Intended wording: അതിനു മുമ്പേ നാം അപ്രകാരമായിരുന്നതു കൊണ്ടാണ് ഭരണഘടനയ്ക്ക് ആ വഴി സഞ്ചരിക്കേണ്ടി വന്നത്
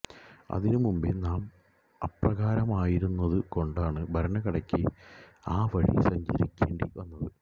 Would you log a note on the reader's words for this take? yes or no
no